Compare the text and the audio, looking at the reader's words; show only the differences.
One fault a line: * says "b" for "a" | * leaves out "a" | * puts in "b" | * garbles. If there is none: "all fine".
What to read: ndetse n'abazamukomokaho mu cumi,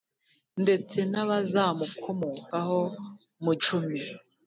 all fine